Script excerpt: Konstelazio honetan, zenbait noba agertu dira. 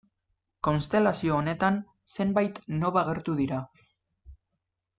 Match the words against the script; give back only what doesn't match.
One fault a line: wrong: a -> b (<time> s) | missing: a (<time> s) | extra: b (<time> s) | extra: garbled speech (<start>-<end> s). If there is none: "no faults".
no faults